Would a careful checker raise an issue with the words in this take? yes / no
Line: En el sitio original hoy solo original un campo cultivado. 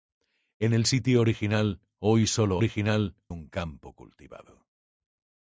no